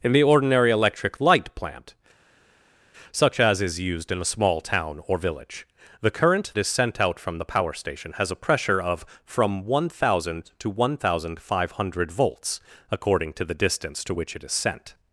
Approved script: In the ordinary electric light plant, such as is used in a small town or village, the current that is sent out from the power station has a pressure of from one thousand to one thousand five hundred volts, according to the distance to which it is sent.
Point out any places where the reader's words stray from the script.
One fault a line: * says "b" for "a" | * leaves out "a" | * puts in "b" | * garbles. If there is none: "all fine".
* leaves out "that"